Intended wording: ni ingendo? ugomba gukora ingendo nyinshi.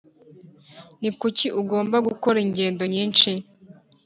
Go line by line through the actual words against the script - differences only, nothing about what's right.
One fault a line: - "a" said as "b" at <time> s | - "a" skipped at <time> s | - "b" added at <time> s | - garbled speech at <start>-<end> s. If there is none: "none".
- "ingendo" said as "kuki" at 1.2 s